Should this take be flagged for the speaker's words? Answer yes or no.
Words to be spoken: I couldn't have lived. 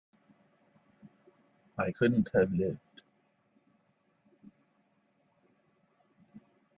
no